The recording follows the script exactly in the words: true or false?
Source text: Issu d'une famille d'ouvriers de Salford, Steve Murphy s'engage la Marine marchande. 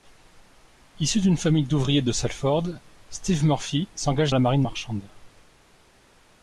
true